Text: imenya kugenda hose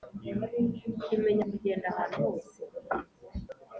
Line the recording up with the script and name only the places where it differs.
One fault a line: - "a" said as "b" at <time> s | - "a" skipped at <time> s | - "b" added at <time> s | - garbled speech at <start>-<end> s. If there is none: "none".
- "ahantu" added at 1.9 s